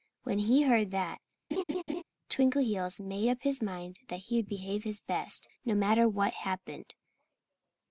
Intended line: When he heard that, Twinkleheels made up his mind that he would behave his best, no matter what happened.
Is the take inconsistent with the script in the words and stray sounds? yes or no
yes